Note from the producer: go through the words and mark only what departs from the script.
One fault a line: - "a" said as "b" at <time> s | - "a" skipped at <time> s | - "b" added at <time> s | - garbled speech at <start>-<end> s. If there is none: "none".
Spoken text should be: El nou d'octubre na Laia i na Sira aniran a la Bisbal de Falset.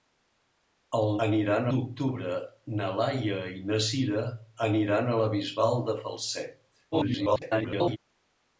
- "nou" said as "aniran" at 1.3 s
- garbled speech at 6.9-8.0 s